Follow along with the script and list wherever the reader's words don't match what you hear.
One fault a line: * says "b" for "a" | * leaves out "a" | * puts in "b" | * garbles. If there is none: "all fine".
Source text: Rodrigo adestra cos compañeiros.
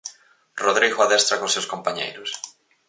* puts in "seus"